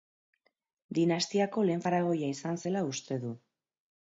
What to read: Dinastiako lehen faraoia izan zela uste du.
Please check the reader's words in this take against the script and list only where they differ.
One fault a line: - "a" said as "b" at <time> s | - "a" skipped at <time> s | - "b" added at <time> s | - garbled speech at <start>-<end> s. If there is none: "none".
none